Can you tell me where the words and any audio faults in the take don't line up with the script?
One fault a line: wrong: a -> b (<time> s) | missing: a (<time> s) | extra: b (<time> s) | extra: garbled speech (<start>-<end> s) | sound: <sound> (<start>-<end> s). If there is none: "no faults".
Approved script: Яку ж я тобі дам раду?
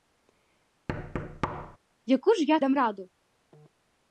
sound: thud (0.9-1.8 s)
missing: тобі (2.6 s)